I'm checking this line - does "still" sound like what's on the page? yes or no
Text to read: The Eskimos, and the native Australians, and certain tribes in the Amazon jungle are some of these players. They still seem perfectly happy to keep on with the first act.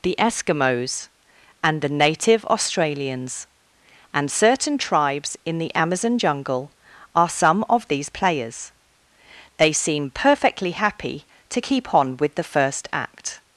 no